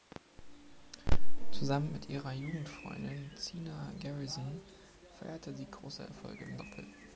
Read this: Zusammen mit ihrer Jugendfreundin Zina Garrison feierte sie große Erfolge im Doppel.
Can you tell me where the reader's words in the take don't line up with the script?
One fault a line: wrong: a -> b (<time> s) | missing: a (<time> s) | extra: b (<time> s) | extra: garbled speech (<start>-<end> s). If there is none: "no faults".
no faults